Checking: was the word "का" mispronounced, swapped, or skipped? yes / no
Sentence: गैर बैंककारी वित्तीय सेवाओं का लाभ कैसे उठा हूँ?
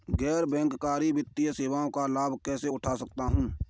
no